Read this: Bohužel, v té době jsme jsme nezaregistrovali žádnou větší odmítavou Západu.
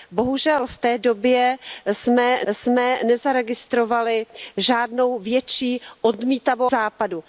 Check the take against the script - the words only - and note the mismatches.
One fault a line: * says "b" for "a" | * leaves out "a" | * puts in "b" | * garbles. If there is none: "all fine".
all fine